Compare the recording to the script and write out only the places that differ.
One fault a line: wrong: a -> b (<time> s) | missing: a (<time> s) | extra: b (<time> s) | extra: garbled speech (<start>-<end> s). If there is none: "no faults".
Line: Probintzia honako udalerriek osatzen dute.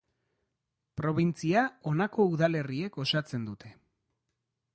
no faults